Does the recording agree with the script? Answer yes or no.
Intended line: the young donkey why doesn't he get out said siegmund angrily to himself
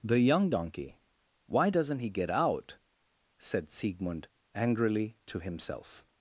yes